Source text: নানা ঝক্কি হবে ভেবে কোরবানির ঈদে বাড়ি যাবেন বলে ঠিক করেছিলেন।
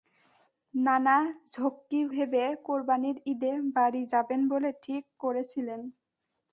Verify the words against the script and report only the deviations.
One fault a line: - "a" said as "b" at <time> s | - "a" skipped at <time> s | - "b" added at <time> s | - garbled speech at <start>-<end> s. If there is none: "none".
- "হবে" skipped at 2.0 s